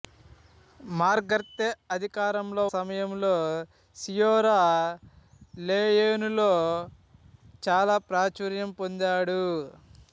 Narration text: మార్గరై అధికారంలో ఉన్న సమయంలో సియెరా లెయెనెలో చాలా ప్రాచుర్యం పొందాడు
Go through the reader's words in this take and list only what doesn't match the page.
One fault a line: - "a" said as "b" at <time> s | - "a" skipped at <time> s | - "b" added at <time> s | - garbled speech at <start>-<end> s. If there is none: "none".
- "ఉన్న" skipped at 2.6 s